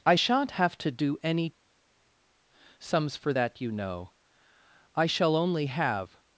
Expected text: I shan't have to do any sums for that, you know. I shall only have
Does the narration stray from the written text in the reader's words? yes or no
no